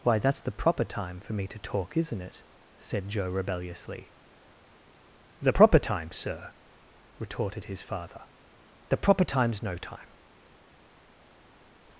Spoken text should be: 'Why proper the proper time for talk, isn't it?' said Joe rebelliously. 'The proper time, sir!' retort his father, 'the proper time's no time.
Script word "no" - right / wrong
right